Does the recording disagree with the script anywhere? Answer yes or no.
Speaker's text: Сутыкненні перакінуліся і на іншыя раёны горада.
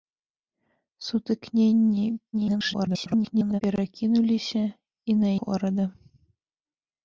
yes